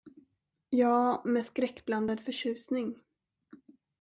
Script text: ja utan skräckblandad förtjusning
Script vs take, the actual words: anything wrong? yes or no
yes